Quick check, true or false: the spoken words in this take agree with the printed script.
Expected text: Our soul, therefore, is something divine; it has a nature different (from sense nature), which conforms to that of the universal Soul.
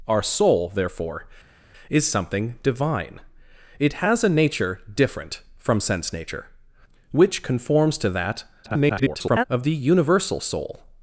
false